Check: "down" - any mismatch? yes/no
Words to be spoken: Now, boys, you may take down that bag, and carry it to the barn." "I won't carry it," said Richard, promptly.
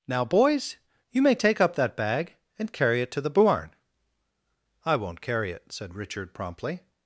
yes